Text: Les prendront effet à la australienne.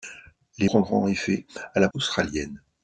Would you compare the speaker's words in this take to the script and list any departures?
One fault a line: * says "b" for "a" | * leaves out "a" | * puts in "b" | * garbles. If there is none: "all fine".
all fine